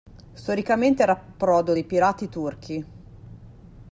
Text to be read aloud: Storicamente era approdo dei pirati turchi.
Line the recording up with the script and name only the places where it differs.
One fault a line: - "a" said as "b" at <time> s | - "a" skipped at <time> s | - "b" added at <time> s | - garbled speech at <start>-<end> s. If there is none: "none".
none